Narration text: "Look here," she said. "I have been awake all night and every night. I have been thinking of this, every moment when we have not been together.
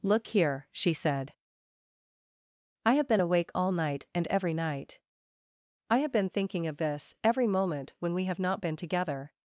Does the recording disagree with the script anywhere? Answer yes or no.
no